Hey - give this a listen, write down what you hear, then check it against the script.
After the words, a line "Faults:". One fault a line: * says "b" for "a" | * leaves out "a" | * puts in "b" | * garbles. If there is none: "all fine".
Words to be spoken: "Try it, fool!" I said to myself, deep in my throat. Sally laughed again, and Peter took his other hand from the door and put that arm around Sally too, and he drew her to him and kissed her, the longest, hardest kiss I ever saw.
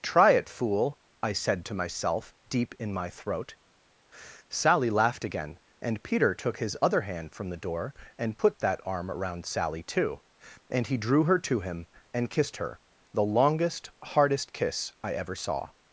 "Try it, fool!" I said to myself, deep in my throat. Sally laughed again, and Peter took his other hand from the door and put that arm around Sally too, and he drew her to him and kissed her, the longest, hardest kiss I ever saw.
Faults:
all fine